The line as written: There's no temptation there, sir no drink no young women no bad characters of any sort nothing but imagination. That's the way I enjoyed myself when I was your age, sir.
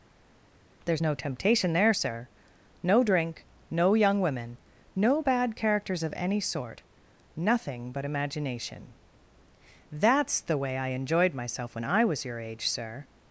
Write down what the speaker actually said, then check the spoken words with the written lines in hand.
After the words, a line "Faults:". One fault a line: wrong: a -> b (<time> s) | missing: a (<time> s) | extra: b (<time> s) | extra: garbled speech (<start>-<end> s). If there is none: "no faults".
There's no temptation there, sir no drink no young women no bad characters of any sort nothing but imagination. That's the way I enjoyed myself when I was your age, sir.
Faults:
no faults